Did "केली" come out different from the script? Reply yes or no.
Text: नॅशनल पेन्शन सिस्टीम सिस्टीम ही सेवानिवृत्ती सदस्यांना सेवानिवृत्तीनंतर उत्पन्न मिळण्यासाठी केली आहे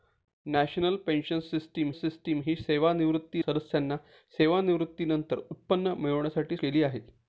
no